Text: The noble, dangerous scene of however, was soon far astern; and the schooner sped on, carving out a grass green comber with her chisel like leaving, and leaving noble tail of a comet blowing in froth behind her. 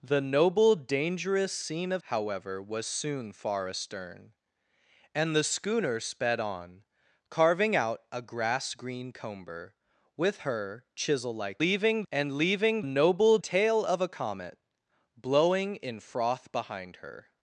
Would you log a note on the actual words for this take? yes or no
no